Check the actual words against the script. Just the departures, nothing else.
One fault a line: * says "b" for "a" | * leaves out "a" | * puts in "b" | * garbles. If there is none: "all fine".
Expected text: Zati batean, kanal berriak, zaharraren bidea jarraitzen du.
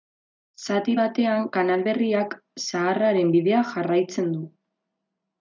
all fine